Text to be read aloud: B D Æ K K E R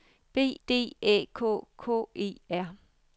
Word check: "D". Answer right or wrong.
right